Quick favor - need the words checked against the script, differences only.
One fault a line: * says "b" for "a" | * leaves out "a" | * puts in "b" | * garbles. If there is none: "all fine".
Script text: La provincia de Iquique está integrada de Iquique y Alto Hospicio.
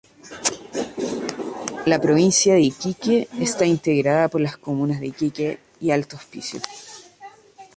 * puts in "por las comunas"